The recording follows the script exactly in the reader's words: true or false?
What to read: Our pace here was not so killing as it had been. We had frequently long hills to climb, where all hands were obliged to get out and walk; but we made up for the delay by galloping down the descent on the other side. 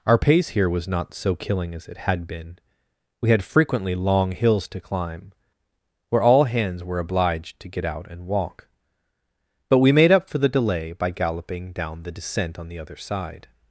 true